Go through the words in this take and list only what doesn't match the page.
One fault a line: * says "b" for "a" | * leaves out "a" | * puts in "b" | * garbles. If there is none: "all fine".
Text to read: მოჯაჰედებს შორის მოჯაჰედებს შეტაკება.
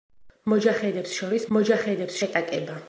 all fine